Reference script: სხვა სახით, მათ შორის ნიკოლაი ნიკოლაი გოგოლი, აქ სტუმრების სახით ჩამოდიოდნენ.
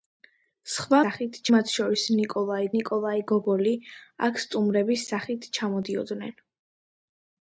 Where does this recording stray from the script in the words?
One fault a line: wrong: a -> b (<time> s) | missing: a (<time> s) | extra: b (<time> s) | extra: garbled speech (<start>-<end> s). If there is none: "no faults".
no faults